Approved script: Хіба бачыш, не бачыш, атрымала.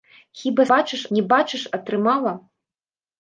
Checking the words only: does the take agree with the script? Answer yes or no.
yes